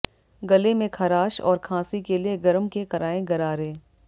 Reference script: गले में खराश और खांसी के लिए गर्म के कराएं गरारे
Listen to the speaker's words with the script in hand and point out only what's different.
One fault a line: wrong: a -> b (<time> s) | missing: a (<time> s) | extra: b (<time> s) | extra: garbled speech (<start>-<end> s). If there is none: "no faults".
no faults